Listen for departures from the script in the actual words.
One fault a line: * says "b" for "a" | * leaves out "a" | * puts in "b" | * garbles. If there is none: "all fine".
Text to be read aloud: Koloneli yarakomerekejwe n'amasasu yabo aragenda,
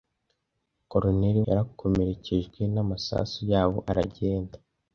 all fine